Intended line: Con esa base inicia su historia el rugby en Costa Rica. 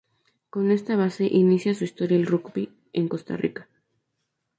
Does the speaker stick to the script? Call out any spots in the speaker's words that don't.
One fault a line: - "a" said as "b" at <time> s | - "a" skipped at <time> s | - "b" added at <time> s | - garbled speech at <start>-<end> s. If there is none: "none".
- "esa" said as "esta" at 0.7 s